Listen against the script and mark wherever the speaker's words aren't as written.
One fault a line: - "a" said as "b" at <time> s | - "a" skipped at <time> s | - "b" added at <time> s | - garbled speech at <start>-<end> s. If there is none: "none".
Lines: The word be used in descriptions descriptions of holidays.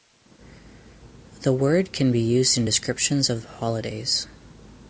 - "can" added at 1.9 s
- "descriptions" skipped at 3.3 s